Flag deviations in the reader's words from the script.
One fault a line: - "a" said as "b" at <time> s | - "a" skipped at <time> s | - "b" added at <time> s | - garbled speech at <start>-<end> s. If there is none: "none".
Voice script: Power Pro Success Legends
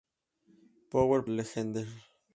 - "Pro Success" skipped at 1.2 s